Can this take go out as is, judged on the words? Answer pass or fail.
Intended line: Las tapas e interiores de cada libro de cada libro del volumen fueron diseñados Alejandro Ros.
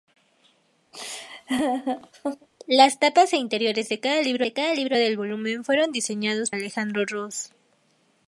pass